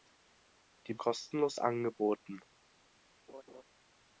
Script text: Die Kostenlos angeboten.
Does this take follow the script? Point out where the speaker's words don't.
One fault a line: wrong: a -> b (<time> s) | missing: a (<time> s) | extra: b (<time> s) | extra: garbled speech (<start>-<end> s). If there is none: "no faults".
no faults